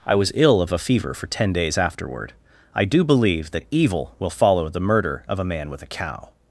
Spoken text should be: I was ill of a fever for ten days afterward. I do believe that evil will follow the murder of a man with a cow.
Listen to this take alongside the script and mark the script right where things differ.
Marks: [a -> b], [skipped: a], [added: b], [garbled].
I was ill of a fever for ten days afterward. I do believe that evil will follow the murder of a man with a cow.